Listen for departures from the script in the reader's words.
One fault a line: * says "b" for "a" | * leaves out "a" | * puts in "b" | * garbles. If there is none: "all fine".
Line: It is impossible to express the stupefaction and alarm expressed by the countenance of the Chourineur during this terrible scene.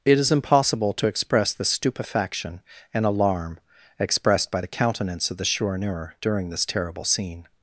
all fine